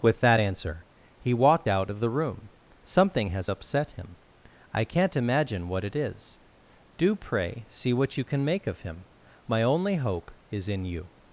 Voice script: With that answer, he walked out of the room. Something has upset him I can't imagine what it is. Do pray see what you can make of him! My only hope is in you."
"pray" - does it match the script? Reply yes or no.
yes